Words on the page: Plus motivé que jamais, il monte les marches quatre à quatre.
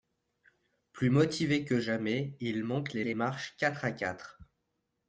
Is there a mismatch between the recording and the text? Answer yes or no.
yes